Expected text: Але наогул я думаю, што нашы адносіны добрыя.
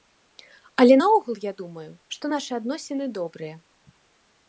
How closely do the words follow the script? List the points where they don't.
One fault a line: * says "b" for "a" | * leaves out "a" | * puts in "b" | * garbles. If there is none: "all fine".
all fine